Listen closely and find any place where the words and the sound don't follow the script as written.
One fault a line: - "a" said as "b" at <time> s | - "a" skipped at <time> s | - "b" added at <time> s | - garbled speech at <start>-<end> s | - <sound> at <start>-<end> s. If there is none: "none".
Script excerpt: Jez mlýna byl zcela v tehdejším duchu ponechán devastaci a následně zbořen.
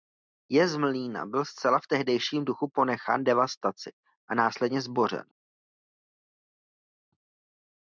none